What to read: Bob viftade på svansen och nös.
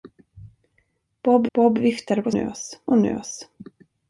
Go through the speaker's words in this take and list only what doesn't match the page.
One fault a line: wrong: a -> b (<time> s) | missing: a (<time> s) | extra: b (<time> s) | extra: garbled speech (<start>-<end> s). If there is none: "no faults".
extra: bob (1.5 s)
wrong: svansen -> nös (2.3 s)